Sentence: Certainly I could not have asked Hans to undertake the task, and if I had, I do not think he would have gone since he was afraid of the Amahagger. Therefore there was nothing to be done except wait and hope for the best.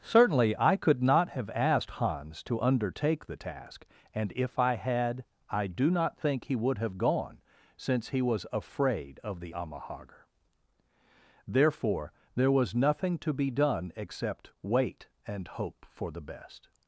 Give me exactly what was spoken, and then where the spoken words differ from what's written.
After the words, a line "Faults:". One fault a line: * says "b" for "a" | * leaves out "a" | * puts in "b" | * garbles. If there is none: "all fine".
Certainly I could not have asked Hans to undertake the task, and if I had, I do not think he would have gone since he was afraid of the Amahagger. Therefore there was nothing to be done except wait and hope for the best.
Faults:
all fine